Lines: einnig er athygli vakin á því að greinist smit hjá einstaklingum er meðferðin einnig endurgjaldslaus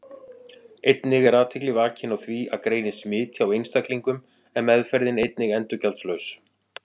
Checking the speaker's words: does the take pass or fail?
pass